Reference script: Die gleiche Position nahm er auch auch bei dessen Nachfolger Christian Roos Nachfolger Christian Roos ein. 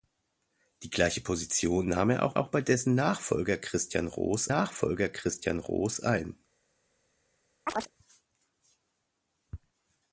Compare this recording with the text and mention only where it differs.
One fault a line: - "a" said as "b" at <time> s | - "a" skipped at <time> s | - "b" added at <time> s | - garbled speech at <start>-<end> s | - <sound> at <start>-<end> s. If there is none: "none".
- chirp at 7.7-7.9 s